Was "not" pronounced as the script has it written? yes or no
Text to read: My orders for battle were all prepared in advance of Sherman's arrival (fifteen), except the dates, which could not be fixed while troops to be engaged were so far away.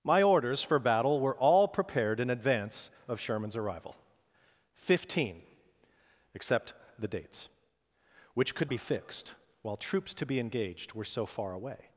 no